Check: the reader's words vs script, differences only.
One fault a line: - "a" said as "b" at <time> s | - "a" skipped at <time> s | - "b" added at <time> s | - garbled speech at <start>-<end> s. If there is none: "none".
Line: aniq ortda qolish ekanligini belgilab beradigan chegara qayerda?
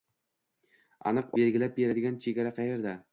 - "ortda qolish ekanligini" skipped at 1.4 s